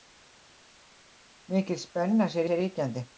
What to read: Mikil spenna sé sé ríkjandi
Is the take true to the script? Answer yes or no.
yes